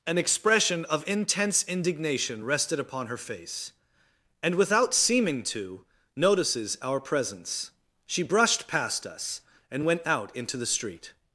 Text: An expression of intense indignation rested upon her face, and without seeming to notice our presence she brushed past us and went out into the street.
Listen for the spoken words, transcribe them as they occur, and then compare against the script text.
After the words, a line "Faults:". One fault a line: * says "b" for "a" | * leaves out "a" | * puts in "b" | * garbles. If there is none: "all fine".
An expression of intense indignation rested upon her face, and without seeming to notices our presence she brushed past us and went out into the street.
Faults:
* says "notices" for "notice"